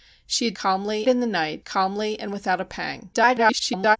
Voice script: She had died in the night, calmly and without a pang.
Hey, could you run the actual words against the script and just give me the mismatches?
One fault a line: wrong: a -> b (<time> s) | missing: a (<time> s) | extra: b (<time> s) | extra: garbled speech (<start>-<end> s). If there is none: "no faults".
wrong: died -> calmly (0.5 s)
extra: garbled speech (3.1-4.0 s)